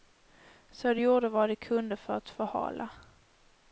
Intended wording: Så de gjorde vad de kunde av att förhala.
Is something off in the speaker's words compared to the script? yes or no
yes